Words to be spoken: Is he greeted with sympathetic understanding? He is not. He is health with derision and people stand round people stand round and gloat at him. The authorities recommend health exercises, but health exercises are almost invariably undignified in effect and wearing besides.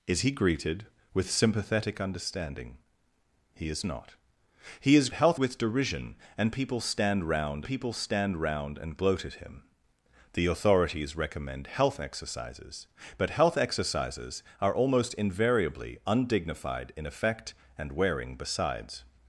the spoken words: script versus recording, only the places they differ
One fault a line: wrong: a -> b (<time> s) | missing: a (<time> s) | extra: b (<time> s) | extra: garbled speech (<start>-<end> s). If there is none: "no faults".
no faults